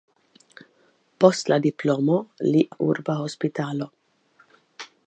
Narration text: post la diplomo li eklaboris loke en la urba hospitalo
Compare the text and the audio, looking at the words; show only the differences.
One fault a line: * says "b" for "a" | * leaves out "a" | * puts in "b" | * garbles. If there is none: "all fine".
* leaves out "eklaboris loke en"